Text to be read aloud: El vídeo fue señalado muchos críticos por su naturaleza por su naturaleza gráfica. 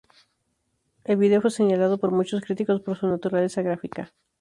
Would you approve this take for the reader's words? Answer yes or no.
no